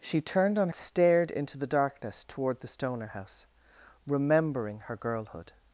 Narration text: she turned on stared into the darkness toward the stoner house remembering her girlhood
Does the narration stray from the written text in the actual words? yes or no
no